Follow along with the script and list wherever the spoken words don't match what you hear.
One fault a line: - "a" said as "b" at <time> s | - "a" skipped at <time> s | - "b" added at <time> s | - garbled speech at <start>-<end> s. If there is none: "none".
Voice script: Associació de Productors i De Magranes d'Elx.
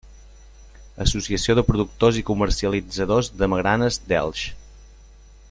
- "Comercialitzadors" added at 2.3 s